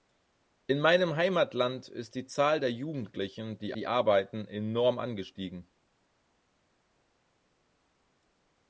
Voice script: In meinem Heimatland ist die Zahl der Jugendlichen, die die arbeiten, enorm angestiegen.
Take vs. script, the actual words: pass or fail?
pass